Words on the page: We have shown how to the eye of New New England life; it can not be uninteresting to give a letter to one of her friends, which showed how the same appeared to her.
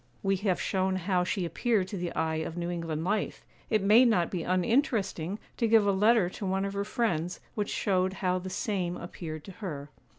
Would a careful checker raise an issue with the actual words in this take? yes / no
yes